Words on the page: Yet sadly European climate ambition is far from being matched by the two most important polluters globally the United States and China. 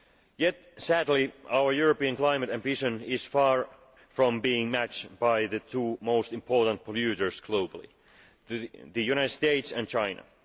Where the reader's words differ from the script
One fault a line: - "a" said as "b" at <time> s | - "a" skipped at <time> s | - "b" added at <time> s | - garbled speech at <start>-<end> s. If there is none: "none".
- "our" added at 1.5 s